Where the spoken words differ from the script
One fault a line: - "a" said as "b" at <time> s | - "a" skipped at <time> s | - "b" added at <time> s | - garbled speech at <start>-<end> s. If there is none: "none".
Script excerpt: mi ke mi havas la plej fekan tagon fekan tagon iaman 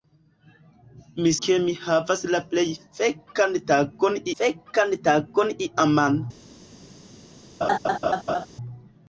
none